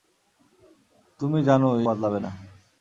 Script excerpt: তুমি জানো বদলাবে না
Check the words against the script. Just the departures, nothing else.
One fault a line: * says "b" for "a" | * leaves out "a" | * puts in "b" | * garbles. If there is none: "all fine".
all fine